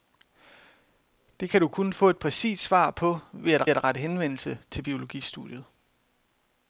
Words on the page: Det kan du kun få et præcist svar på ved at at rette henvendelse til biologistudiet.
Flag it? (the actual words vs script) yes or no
no